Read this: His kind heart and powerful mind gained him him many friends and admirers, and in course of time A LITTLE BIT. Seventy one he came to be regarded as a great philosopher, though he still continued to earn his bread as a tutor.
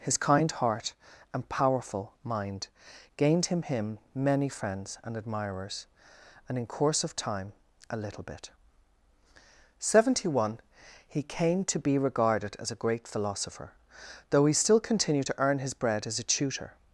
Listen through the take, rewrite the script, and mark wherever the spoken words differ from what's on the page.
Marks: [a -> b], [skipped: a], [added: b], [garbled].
His kind heart and powerful mind gained him him many friends and admirers, and in course of time A LITTLE BIT. Seventy one he came to be regarded as a great philosopher, though he still continued to earn his bread as a tutor.